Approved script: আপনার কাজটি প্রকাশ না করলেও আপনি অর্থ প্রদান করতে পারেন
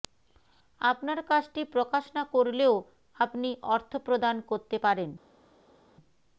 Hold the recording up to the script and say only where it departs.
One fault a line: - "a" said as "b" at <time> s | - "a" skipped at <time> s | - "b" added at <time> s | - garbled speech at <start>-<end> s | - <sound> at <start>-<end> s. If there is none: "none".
none